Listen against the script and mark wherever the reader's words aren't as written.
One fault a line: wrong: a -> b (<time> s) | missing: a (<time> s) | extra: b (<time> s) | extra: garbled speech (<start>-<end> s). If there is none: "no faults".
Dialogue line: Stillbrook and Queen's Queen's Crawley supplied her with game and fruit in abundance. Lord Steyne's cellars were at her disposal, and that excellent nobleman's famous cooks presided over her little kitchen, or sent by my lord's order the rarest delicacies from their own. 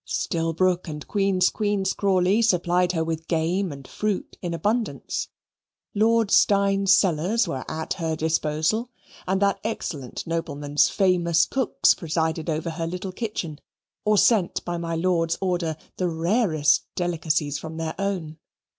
no faults